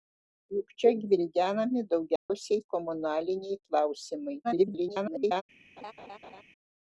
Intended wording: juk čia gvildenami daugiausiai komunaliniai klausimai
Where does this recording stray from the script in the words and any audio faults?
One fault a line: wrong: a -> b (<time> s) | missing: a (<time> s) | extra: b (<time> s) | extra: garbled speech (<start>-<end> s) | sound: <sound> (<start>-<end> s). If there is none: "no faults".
sound: dropout (2.2-2.3 s)
extra: garbled speech (4.4-5.4 s)
sound: laugh (5.8-6.4 s)